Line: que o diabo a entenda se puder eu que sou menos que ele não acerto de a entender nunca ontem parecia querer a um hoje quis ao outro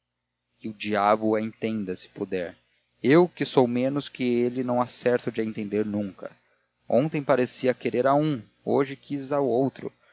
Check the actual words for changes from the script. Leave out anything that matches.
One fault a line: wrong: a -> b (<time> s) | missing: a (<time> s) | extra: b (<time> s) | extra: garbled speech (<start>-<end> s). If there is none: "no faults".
no faults